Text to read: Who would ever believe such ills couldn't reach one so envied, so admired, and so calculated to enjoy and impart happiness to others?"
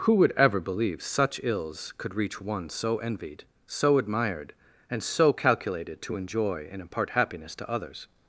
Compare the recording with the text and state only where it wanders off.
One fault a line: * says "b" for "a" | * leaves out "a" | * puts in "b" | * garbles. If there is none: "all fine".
* says "could" for "couldn't"